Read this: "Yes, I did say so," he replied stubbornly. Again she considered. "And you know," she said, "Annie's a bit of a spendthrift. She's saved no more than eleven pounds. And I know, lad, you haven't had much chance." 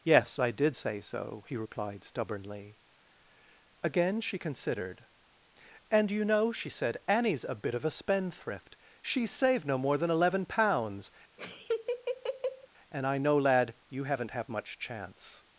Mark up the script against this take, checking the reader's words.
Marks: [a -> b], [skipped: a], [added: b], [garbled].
"Yes, I did say so," he replied stubbornly. Again she considered. "And you know," she said, "Annie's a bit of a spendthrift. She's saved no more than eleven pounds. And I know, lad, you haven't [had -> have] much chance."